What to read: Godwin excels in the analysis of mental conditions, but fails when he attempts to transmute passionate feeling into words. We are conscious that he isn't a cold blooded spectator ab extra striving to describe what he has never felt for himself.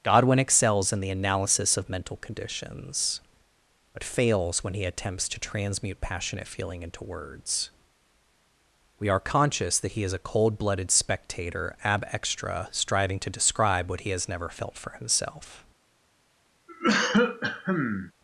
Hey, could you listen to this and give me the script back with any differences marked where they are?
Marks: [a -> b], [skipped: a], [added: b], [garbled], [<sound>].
Godwin excels in the analysis of mental conditions, but fails when he attempts to transmute passionate feeling into words. We are conscious that he [isn't -> is] a cold blooded spectator ab extra striving to describe what he has never felt for himself. [cough]